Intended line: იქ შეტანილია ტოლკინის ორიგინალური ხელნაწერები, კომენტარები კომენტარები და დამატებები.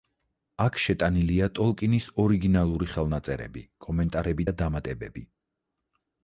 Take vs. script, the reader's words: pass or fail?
fail